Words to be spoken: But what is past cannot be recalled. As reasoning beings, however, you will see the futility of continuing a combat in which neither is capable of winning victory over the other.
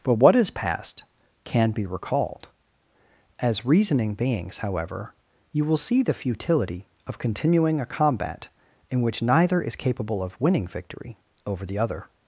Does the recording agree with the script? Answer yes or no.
no